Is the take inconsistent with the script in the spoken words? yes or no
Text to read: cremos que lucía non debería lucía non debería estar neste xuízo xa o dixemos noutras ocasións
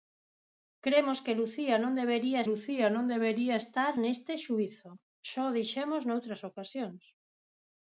no